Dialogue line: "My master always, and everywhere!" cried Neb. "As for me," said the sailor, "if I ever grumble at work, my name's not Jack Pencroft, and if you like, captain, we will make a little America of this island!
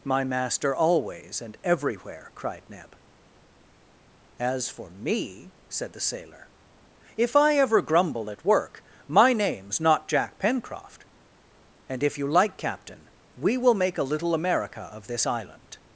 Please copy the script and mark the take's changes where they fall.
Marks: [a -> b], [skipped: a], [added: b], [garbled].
"My master always, and everywhere!" cried Neb. "As for me," said the sailor, "if I ever grumble at work, my name's not Jack Pencroft, and if you like, captain, we will make a little America of this island!